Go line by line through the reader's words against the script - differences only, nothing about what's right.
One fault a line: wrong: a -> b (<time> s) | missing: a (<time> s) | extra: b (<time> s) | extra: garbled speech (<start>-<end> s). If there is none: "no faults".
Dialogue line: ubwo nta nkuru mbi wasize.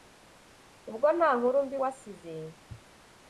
no faults